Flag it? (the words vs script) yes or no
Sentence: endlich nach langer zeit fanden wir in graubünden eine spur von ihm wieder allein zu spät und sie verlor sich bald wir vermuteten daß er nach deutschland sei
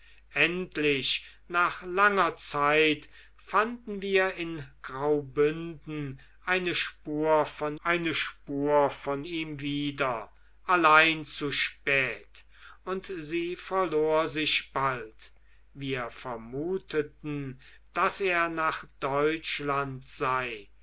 yes